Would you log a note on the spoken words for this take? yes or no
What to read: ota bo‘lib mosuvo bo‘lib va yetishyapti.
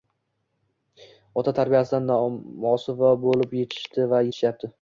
yes